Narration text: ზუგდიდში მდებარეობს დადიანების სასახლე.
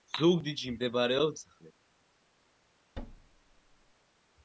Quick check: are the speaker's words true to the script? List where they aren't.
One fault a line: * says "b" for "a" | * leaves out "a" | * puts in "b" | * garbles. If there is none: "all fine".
* leaves out "დადიანების"